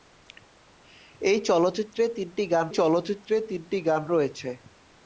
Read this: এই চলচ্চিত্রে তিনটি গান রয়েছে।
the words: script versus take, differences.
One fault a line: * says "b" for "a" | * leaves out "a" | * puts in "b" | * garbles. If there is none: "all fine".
* puts in "চলচ্চিত্রে তিনটি গান"